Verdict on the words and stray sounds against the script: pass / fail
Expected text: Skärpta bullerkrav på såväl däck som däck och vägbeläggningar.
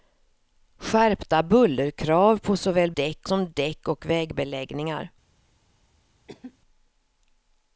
fail